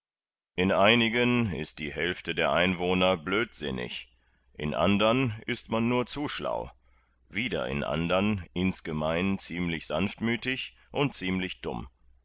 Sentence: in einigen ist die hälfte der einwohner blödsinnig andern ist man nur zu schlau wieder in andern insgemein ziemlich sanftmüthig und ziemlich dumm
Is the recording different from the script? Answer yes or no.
yes